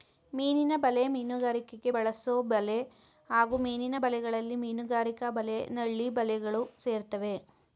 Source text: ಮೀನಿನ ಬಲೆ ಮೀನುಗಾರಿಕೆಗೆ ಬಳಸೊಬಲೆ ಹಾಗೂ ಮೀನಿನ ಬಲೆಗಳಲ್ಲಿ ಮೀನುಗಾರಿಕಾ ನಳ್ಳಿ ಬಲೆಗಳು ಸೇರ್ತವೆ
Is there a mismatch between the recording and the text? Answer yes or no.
yes